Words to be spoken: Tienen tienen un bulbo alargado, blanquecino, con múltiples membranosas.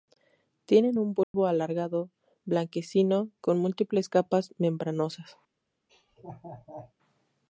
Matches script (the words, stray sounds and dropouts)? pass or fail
fail